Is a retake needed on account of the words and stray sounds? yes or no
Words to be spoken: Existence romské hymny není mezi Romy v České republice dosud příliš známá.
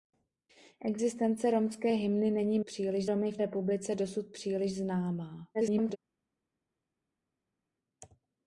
yes